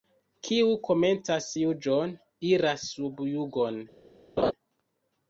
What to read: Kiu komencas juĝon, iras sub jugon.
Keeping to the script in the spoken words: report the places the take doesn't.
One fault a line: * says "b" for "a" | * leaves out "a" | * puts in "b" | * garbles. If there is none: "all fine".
all fine